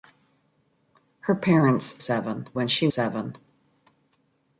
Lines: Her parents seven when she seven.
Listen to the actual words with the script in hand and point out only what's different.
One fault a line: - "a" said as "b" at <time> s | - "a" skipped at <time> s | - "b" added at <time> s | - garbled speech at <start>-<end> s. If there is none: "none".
none